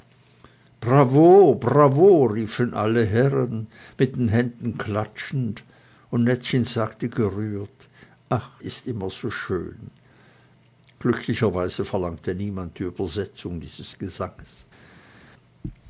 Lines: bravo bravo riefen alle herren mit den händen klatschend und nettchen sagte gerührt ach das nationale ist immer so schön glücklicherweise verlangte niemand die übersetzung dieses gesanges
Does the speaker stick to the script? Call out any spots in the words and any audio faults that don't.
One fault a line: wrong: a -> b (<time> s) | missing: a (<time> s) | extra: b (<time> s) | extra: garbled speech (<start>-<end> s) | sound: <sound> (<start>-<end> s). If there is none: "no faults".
missing: das nationale (8.5 s)